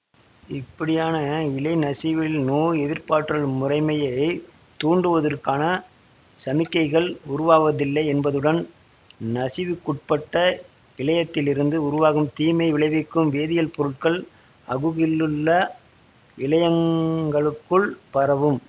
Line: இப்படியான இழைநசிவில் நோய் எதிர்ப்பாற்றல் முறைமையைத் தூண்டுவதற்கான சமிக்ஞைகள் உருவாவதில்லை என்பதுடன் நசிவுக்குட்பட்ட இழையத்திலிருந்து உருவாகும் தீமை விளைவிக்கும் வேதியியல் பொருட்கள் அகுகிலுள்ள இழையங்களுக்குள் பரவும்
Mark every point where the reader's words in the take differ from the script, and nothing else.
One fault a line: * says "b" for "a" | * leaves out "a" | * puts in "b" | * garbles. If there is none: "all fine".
all fine